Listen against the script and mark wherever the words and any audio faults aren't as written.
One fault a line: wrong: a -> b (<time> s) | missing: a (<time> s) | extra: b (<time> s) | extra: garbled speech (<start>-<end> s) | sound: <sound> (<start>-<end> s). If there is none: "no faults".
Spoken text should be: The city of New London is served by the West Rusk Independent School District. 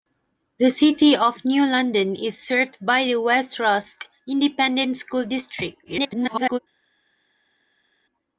extra: garbled speech (5.8-6.6 s)